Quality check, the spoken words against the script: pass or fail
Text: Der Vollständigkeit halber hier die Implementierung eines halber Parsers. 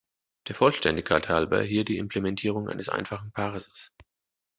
fail